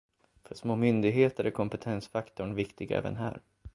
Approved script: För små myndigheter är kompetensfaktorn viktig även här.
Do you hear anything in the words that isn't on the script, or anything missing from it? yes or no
no